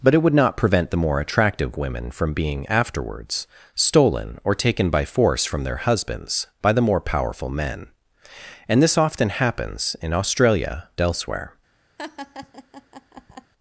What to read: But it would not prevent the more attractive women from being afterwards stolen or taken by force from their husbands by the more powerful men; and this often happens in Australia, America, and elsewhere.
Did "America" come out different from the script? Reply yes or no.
yes